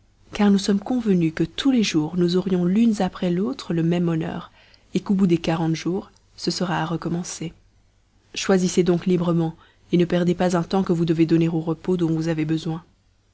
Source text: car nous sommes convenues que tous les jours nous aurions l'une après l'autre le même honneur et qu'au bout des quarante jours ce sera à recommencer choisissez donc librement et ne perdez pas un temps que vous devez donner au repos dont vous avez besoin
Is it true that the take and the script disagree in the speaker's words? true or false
false